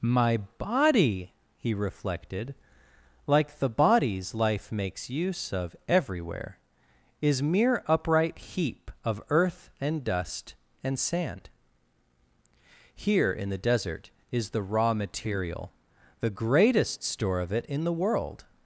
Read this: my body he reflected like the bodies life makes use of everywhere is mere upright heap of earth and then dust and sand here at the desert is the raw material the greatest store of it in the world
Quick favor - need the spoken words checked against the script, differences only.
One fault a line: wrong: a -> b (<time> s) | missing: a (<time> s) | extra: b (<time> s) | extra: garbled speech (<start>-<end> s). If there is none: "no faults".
missing: then (10.0 s)
wrong: at -> in (13.3 s)